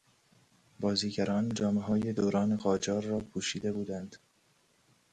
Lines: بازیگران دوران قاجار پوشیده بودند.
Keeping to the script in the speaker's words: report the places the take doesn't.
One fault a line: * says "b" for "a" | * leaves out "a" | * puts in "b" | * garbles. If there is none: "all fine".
* puts in "جامههای"
* puts in "را"